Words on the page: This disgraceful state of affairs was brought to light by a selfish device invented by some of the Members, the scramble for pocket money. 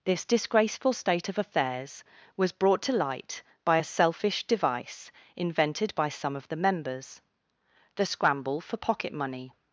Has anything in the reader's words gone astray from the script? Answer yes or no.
no